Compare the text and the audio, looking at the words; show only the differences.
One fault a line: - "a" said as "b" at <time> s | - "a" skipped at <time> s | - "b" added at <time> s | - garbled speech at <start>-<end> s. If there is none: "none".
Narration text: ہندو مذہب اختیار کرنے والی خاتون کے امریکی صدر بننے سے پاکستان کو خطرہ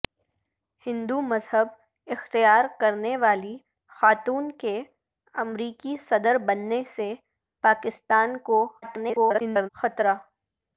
- garbled speech at 8.8-9.7 s